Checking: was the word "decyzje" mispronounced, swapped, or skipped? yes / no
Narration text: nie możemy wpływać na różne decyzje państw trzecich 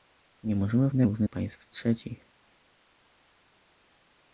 yes